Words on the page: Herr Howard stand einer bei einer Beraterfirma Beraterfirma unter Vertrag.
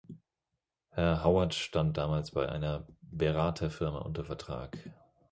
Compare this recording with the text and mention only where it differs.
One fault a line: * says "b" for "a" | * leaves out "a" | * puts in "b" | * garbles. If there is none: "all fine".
* says "damals" for "einer"
* leaves out "Beraterfirma"